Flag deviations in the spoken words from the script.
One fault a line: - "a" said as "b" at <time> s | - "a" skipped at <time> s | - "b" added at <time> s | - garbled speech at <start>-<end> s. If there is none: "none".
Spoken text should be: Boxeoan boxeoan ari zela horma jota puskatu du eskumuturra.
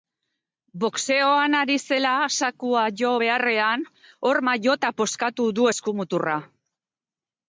- "boxeoan" skipped at 1.6 s
- "zakua jo beharrean" added at 2.4 s